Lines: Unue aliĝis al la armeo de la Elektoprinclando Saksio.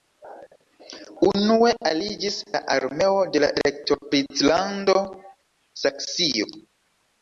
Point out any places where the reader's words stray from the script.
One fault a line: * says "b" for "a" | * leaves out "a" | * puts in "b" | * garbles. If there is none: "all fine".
* leaves out "al"